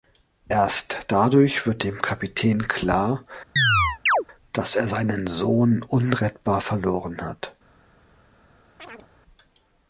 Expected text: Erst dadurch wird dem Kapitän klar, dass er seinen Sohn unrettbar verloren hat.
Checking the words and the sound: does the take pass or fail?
fail